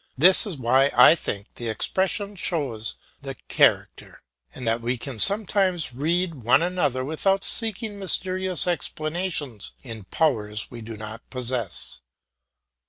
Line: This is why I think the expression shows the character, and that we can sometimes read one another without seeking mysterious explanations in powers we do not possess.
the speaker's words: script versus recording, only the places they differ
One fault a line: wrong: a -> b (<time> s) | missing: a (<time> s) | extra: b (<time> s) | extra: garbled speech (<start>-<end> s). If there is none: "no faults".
no faults